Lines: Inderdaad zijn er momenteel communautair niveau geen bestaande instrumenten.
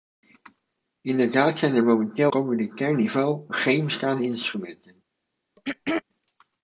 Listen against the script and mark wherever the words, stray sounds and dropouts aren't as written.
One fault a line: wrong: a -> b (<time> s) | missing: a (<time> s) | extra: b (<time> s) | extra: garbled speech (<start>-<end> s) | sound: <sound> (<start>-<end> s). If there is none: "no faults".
sound: throat clearing (5.6-6.0 s)